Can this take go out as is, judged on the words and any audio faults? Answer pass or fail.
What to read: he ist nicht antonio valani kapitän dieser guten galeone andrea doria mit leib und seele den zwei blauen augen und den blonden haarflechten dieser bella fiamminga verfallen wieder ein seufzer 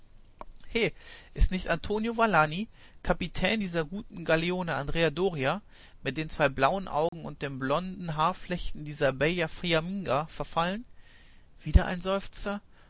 fail